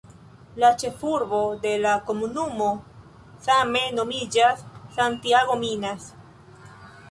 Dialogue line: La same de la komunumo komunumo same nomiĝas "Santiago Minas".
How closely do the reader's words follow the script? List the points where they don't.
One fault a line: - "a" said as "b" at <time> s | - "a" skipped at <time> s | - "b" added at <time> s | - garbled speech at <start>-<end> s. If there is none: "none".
- "same" said as "ĉefurbo" at 0.8 s
- "komunumo" skipped at 2.7 s